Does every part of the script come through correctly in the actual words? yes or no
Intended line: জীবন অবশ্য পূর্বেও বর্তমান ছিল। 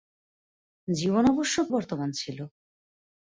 no